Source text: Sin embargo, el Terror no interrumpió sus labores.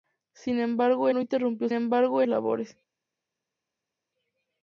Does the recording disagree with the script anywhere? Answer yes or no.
yes